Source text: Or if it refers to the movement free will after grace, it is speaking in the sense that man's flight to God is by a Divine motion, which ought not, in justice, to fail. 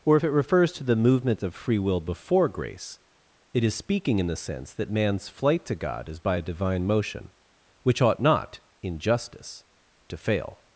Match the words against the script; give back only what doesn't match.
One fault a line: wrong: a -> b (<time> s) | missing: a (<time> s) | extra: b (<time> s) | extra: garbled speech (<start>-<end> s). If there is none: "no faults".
extra: of (1.4 s)
wrong: after -> before (2.0 s)